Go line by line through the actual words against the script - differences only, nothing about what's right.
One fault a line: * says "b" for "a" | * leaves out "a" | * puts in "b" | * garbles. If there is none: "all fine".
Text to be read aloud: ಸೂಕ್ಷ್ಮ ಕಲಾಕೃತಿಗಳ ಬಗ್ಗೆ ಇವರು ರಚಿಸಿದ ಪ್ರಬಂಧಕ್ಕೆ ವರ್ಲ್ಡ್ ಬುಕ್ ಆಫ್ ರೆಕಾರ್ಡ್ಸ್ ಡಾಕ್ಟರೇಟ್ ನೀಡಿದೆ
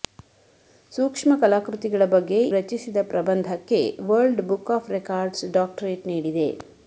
* leaves out "ಇವರು"